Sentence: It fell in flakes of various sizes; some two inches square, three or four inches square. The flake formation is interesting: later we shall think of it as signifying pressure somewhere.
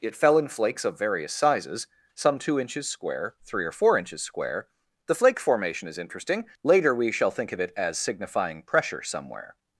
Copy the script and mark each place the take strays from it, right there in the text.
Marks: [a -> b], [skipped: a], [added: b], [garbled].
It fell in flakes of various sizes; some two inches square, three or four inches square. The flake formation is interesting: later we shall think of it as signifying pressure somewhere.